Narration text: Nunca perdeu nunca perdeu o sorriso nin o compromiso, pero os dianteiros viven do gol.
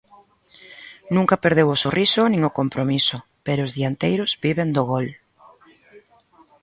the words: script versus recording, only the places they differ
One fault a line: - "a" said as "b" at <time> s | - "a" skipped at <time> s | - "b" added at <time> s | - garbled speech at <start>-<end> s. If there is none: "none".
- "nunca perdeu" skipped at 1.7 s